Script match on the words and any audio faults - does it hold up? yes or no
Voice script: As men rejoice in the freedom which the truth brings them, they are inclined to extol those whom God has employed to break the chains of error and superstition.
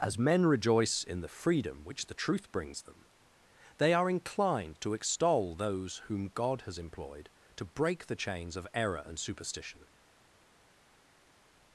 yes